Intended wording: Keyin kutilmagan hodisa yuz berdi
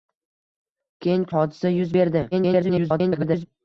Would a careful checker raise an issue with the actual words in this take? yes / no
yes